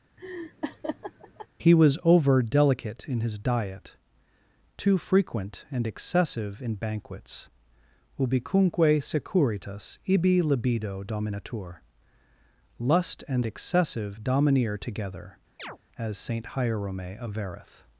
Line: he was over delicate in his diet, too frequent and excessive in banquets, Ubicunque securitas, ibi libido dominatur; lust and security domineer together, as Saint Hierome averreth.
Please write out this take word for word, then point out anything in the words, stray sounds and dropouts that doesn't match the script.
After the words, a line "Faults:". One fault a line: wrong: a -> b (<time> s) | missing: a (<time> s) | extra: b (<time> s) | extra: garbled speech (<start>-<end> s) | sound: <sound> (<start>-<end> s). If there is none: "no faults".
he was over delicate in his diet, too frequent and excessive in banquets, Ubicunque securitas, ibi libido dominatur; lust and excessive domineer together, as Saint Hierome averreth.
Faults:
sound: laugh (0.2-1.5 s)
wrong: security -> excessive (13.4 s)
sound: chirp (15.6-15.8 s)